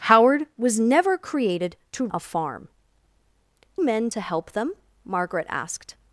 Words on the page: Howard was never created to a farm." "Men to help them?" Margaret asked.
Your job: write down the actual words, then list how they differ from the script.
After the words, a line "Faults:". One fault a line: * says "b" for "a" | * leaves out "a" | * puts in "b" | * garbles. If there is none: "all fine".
Howard was never created to a farm." "Men to help them?" Margaret asked.
Faults:
all fine